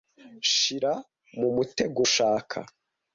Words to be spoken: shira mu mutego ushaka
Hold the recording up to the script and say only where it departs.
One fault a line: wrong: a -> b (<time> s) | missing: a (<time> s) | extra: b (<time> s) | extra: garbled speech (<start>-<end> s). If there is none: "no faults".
no faults